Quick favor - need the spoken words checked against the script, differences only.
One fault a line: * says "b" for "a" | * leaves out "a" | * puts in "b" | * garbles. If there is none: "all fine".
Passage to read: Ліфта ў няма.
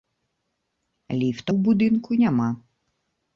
* puts in "будынку"